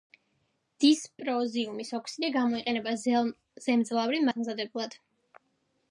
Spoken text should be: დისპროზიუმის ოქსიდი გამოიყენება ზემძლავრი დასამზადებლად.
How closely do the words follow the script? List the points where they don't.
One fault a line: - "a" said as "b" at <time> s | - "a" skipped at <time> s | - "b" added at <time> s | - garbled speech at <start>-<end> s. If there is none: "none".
none